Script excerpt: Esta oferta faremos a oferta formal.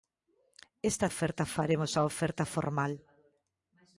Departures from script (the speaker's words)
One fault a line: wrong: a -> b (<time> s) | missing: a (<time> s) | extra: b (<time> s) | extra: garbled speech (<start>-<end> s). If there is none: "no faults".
no faults